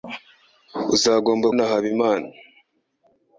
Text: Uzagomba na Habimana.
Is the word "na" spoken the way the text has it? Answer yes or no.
yes